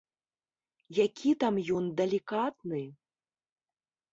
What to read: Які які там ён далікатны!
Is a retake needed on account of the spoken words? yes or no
yes